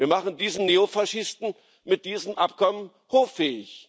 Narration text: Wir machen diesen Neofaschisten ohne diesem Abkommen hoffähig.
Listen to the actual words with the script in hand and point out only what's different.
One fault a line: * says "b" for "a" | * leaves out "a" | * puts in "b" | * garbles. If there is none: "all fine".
* says "mit" for "ohne"